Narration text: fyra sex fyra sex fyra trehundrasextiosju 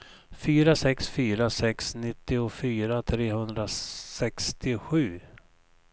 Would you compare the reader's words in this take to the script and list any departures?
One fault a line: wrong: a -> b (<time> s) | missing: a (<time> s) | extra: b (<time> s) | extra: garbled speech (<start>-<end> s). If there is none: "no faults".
wrong: fyra -> nittiofyra (1.9 s)